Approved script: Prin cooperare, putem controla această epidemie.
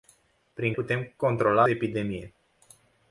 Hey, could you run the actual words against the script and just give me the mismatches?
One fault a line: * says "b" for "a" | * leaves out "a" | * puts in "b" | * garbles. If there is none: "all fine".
* leaves out "cooperare"
* leaves out "această"